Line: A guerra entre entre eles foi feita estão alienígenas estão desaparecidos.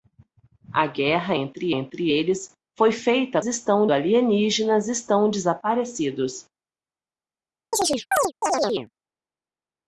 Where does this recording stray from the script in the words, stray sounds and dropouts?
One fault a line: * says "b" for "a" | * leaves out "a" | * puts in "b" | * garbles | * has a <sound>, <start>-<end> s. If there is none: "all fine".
* has a chirp, 7.7-8.9 s